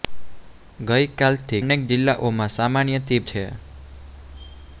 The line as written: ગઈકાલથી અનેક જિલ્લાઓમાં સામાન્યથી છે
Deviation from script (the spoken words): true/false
false